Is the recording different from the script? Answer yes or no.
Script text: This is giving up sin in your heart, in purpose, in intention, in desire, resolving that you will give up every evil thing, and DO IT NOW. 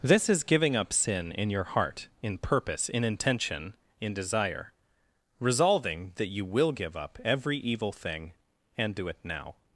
no